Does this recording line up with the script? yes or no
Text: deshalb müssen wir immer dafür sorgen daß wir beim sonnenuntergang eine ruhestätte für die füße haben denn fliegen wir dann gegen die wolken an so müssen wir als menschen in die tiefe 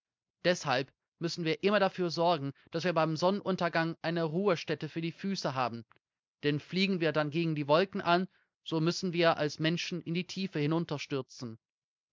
yes